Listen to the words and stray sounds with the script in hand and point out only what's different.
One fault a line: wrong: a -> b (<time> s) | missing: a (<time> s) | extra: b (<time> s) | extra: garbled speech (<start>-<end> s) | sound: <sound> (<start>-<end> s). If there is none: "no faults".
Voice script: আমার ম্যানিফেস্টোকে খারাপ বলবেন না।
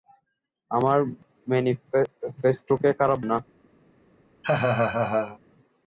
missing: বলবেন (3.2 s)
sound: laugh (4.4-5.4 s)